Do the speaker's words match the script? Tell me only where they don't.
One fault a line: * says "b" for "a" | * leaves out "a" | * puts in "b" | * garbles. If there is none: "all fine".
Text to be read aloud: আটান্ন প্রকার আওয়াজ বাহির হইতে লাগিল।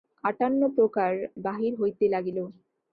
* leaves out "আওয়াজ"